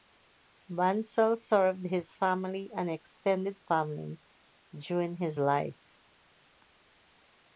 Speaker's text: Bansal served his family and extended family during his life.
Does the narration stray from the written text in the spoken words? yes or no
no